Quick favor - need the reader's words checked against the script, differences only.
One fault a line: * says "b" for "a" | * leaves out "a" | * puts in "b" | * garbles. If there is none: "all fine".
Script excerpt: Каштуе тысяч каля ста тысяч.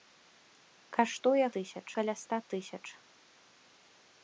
all fine